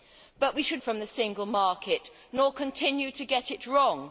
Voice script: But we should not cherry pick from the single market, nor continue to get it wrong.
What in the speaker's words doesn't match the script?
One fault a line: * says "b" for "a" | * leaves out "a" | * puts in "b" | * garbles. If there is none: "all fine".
* leaves out "not cherry pick"